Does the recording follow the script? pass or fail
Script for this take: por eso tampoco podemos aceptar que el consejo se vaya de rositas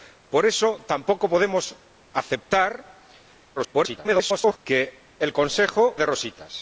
fail